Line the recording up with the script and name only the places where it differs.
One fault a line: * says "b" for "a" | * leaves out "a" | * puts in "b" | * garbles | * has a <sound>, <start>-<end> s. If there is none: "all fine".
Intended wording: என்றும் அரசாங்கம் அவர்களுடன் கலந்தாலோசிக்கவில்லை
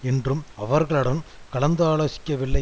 * leaves out "அரசாங்கம்"